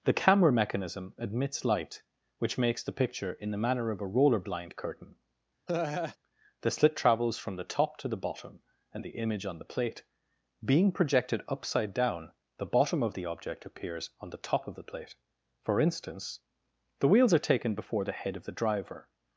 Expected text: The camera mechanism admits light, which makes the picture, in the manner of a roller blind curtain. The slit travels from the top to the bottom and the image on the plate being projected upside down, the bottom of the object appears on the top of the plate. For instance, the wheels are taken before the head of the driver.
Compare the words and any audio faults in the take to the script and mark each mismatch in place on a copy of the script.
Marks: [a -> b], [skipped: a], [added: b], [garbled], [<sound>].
The camera mechanism admits light, which makes the picture, in the manner of a roller blind curtain. [laugh] The slit travels from the top to the bottom and the image on the plate being projected upside down, the bottom of the object appears on the top of the plate. For instance, the wheels are taken before the head of the driver.